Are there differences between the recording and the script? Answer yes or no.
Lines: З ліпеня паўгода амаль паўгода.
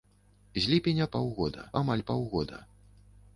no